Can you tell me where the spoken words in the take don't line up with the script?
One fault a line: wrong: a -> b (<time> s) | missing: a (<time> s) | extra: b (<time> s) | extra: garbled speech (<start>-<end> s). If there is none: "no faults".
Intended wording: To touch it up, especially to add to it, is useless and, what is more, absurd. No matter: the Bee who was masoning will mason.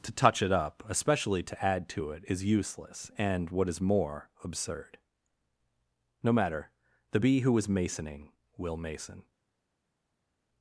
wrong: was -> is (7.6 s)